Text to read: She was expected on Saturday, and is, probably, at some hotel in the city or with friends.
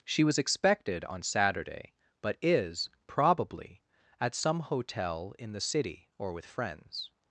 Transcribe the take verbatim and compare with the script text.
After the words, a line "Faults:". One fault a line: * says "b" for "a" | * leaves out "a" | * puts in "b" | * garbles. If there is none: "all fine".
She was expected on Saturday, but is, probably, at some hotel in the city or with friends.
Faults:
* says "but" for "and"